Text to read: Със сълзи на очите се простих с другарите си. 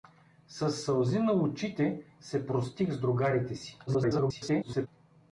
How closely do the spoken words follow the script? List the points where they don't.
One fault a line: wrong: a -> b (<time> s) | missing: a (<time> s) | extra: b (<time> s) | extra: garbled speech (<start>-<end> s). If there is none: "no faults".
extra: garbled speech (3.9-4.9 s)